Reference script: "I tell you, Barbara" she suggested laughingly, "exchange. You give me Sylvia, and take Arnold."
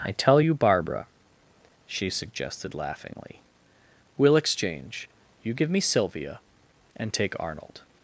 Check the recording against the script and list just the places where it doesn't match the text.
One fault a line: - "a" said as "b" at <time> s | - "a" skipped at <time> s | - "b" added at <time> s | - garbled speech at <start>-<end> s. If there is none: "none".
- "we'll" added at 4.2 s